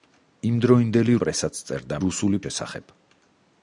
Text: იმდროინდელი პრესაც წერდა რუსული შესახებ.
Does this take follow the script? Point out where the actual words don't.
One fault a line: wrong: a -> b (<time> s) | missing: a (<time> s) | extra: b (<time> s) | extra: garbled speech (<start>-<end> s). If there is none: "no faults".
no faults